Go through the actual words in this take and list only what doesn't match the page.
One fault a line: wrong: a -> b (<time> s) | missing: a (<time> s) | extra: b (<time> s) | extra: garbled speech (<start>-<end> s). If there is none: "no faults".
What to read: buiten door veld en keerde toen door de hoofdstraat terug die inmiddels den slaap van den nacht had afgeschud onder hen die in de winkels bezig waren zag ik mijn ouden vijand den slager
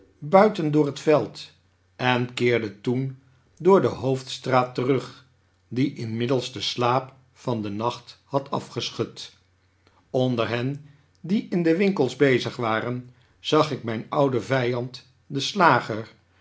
extra: het (0.8 s)